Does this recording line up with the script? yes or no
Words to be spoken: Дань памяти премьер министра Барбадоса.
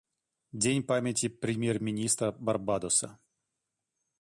yes